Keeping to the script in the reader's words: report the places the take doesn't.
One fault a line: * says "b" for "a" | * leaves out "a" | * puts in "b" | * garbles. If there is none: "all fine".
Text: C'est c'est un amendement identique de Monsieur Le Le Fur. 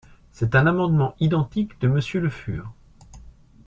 * leaves out "c'est"
* leaves out "Le"